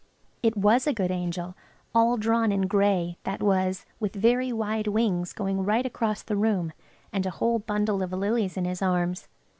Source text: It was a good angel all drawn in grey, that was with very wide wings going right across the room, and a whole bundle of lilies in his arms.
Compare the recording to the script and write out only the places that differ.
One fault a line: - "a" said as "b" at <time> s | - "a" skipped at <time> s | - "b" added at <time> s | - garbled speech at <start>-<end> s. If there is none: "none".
none